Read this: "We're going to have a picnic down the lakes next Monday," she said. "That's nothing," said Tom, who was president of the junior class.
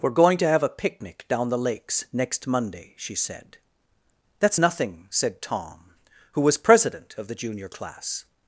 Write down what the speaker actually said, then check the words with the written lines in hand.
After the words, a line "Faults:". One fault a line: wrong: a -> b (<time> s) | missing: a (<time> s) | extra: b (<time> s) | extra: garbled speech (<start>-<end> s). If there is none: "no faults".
"We're going to have a picnic down the lakes next Monday," she said. "That's nothing," said Tom, who was president of the junior class.
Faults:
no faults